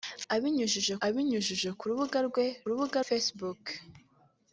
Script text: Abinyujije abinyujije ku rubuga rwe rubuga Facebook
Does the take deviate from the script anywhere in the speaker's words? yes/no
no